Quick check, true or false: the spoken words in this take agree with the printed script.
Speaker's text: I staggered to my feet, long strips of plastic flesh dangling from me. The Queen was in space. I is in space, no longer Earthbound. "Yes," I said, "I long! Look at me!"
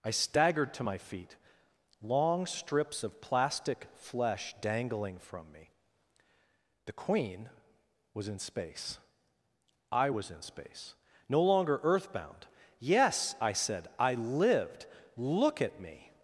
false